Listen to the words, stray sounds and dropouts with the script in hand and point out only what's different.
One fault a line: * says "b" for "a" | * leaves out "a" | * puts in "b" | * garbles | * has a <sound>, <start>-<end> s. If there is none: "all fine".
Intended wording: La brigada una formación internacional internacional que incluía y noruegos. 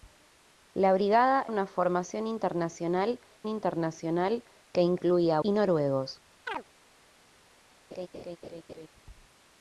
* has a chirp, 6.5-6.6 s
* has a laugh, 7.9-8.9 s